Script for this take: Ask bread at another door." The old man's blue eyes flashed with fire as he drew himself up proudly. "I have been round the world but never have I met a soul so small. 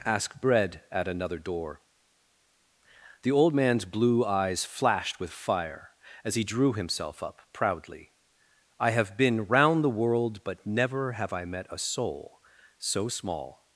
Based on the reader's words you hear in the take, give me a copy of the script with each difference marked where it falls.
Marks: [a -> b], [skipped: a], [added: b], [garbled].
Ask bread at another door." The old man's blue eyes flashed with fire as he drew himself up proudly. "I have been round the world but never have I met a soul so small.